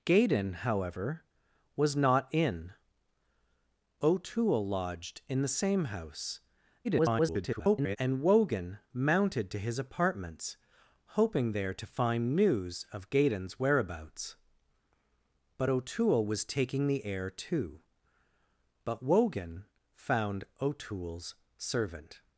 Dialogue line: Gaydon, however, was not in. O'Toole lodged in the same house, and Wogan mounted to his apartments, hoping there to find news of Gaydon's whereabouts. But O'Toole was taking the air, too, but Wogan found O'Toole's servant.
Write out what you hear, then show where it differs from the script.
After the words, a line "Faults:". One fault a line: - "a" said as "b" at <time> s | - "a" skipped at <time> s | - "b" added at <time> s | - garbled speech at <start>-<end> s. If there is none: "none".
Gaydon, however, was not in. O'Toole lodged in the same house, [garbled] and Wogan mounted to his apartments, hoping there to find news of Gaydon's whereabouts. But O'Toole was taking the air, too, but Wogan found O'Toole's servant.
Faults:
- garbled speech at 6.8-8.0 s